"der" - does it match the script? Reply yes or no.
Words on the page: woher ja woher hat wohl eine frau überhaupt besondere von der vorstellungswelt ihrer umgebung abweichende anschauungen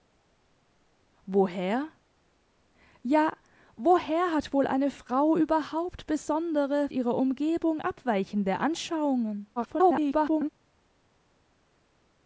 no